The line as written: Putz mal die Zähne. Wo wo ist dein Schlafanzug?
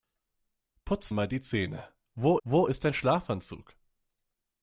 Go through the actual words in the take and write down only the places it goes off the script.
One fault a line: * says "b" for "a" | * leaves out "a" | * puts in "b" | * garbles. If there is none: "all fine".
all fine